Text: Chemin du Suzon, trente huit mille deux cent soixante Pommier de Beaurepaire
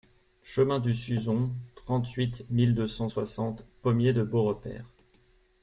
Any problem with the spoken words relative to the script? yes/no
no